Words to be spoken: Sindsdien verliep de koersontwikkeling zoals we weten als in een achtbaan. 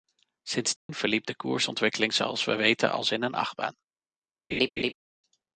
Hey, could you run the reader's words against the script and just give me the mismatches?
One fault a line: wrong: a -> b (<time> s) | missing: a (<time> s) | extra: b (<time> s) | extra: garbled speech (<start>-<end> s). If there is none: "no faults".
no faults